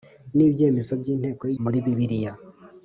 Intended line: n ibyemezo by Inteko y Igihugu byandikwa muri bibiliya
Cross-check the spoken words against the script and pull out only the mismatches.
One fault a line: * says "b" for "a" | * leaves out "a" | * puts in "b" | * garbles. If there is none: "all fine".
* leaves out "Igihugu byandikwa"